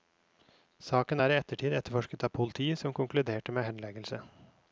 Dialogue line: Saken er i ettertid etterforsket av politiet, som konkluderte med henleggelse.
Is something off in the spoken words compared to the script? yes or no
no